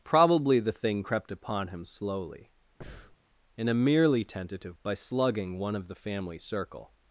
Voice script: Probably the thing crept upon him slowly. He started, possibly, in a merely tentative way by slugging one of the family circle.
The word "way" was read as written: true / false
false